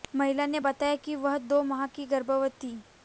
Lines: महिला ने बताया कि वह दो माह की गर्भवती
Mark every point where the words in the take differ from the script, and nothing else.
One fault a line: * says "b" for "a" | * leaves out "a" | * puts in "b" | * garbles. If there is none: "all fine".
all fine